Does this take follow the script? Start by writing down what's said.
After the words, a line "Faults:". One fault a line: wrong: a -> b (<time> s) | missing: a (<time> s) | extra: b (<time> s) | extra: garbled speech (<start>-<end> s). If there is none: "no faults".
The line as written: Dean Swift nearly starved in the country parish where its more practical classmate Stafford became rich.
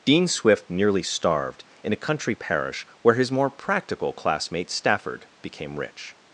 Dean Swift nearly starved in a country parish where his more practical classmate Stafford became rich.
Faults:
wrong: the -> a (1.9 s)
wrong: its -> his (3.1 s)